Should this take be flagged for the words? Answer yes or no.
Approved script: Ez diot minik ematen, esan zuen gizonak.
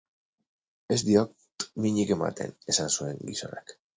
no